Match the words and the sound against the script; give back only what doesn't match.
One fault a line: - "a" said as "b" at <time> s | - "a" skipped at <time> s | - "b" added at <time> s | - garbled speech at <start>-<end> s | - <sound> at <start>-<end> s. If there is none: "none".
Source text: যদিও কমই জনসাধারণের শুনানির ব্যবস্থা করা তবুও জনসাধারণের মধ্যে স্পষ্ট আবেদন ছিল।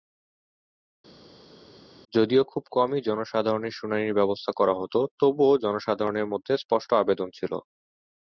- "খুব" added at 2.5 s
- "হতো" added at 4.8 s